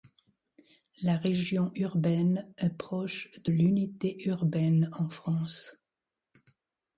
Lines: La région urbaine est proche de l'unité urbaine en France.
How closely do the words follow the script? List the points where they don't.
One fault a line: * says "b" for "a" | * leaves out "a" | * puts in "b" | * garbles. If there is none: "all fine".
all fine